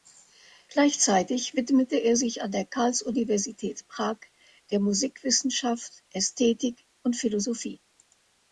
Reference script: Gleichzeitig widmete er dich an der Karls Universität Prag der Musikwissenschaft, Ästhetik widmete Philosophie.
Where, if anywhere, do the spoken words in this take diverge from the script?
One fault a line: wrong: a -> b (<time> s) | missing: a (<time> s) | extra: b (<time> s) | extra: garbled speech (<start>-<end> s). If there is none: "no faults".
wrong: dich -> sich (2.1 s)
wrong: widmete -> und (7.0 s)